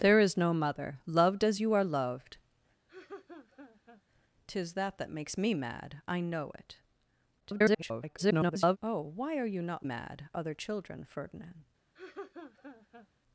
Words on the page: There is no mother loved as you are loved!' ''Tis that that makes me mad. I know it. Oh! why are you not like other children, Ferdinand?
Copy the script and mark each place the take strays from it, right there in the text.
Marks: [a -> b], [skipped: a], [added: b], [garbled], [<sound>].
There is no mother loved as you are loved!' [laugh] ''Tis that that makes me mad. I know it. [garbled] Oh! why are you not [like -> mad] other children, Ferdinand? [laugh]